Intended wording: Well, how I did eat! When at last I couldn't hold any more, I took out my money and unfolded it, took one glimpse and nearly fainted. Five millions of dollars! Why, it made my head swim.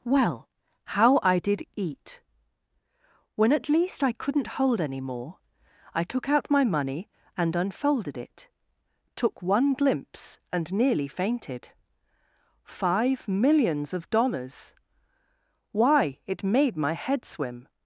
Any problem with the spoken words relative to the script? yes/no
yes